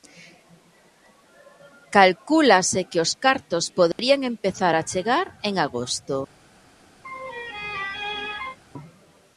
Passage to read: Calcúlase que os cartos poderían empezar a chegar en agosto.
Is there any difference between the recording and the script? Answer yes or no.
no